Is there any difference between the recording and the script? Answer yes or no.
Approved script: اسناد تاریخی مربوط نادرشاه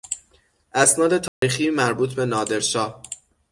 yes